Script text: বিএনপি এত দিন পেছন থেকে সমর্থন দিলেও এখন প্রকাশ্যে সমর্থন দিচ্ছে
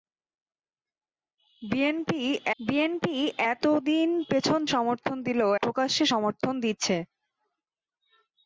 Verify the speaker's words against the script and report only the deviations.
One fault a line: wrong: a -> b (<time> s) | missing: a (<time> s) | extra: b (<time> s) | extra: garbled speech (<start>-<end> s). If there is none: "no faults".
extra: বিএনপি (2.6 s)
missing: থেকে (4.6 s)
missing: এখন (5.5 s)